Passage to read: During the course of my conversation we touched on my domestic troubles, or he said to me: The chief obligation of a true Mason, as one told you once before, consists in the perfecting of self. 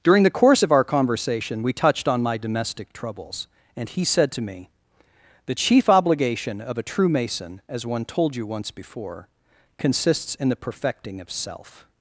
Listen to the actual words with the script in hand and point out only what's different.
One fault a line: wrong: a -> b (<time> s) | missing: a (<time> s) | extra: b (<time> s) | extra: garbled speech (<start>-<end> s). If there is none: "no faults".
wrong: my -> our (0.7 s)
wrong: or -> and (3.8 s)